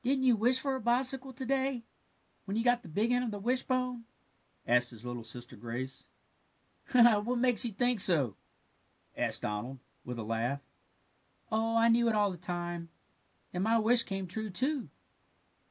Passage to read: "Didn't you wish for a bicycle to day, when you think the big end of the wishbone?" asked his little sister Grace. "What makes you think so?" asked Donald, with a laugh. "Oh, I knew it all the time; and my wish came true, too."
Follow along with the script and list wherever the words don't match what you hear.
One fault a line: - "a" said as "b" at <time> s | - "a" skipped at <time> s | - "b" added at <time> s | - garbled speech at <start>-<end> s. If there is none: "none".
- "think" said as "got" at 2.6 s